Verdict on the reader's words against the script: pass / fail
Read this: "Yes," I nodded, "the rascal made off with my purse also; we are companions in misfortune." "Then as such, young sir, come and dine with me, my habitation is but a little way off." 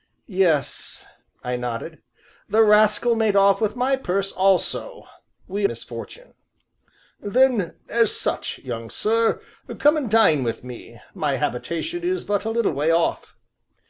fail